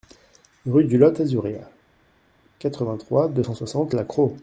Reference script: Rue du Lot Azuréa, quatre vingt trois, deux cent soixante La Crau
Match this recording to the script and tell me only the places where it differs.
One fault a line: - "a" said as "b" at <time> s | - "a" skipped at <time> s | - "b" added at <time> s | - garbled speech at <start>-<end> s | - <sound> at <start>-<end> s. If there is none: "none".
none